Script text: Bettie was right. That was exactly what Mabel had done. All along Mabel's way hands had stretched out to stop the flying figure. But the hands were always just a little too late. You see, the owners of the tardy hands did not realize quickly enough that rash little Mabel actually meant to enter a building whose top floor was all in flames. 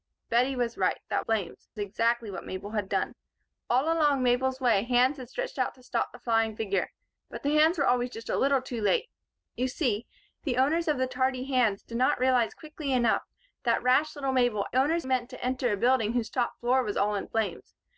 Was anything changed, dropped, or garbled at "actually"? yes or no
yes